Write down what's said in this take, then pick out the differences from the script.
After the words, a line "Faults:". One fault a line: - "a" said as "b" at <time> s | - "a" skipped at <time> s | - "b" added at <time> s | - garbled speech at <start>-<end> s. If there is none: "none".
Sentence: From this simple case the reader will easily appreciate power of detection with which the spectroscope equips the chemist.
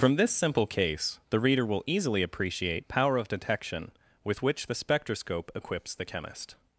From this simple case the reader will easily appreciate power of detection with which the spectroscope equips the chemist.
Faults:
none